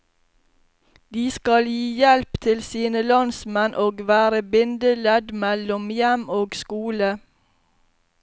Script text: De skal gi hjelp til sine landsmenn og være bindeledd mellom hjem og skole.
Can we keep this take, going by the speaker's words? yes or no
yes